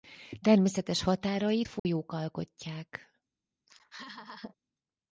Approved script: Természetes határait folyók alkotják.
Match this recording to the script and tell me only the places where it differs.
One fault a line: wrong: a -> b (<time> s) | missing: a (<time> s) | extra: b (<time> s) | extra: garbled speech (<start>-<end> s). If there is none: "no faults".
no faults